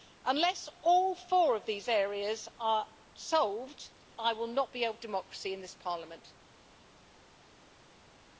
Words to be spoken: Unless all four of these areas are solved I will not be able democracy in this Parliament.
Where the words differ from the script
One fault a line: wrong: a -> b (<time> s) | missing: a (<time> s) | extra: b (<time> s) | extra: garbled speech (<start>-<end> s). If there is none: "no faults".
no faults